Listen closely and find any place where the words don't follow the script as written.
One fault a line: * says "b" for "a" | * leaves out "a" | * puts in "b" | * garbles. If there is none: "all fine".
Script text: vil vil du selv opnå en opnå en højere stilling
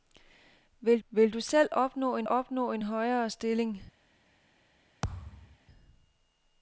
all fine